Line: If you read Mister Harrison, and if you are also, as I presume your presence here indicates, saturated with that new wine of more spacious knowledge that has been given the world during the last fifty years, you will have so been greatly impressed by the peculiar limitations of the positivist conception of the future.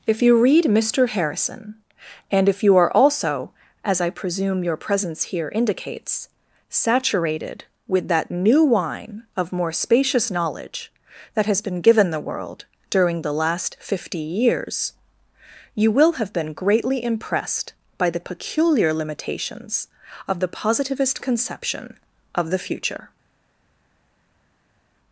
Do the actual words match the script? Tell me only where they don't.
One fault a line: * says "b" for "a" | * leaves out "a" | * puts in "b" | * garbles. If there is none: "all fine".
* leaves out "so"